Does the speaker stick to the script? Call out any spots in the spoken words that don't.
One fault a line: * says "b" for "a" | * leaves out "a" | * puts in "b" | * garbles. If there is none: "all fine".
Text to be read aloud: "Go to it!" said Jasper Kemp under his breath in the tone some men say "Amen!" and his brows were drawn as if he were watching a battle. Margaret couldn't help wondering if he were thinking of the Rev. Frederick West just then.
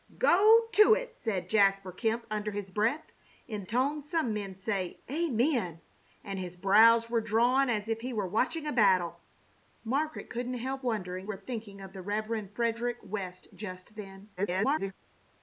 * leaves out "the"
* leaves out "if he"
* garbles